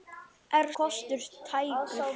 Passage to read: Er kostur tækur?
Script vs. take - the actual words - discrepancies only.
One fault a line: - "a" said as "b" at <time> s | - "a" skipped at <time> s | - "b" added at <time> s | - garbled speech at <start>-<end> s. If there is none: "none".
none